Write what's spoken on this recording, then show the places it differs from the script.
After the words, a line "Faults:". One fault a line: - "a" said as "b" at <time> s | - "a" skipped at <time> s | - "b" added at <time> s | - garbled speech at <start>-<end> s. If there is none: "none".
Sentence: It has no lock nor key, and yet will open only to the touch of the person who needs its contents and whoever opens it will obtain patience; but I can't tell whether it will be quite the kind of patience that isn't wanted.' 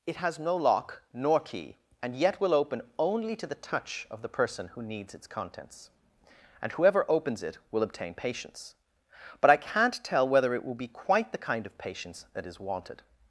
It has no lock nor key, and yet will open only to the touch of the person who needs its contents and whoever opens it will obtain patience; but I can't tell whether it will be quite the kind of patience that is wanted.'
Faults:
- "isn't" said as "is" at 12.4 s